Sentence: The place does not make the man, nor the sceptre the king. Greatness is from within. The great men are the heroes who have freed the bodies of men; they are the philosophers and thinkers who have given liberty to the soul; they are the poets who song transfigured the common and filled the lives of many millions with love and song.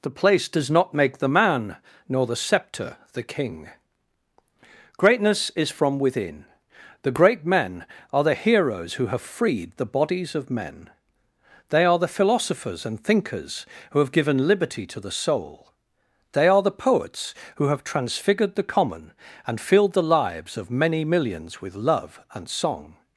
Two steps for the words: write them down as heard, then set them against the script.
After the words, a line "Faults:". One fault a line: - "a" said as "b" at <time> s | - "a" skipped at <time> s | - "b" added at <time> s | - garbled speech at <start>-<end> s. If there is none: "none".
The place does not make the man, nor the sceptre the king. Greatness is from within. The great men are the heroes who have freed the bodies of men; they are the philosophers and thinkers who have given liberty to the soul; they are the poets who have transfigured the common and filled the lives of many millions with love and song.
Faults:
- "song" said as "have" at 17.6 s